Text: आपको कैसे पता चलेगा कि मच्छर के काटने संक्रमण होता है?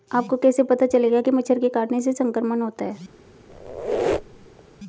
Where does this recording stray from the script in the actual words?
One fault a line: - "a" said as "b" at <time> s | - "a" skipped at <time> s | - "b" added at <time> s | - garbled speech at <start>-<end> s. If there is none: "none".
- "से" added at 2.0 s